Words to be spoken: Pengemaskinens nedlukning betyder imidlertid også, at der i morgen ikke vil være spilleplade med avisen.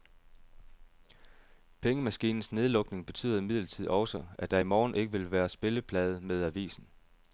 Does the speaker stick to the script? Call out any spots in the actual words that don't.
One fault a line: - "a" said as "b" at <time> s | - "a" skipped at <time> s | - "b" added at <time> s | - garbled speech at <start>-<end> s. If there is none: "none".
none